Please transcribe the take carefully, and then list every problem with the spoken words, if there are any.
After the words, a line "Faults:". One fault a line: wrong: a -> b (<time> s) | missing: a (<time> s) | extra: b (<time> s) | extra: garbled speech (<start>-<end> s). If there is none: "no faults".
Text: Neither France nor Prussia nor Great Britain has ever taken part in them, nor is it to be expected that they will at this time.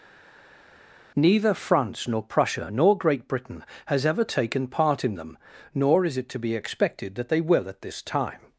Neither France nor Prussia nor Great Britain has ever taken part in them, nor is it to be expected that they will at this time.
Faults:
no faults